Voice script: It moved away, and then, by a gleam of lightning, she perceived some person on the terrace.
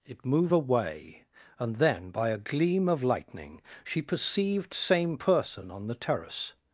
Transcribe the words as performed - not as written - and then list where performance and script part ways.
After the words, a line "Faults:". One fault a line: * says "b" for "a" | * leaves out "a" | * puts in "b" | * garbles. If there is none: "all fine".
It move away, and then, by a gleam of lightning, she perceived same person on the terrace.
Faults:
* says "move" for "moved"
* says "same" for "some"